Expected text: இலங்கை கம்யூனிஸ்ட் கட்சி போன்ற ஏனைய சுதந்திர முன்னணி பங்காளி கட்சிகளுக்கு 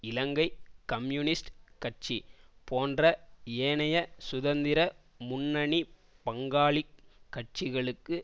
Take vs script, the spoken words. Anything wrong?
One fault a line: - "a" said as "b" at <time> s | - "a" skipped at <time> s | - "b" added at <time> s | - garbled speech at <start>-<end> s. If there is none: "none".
none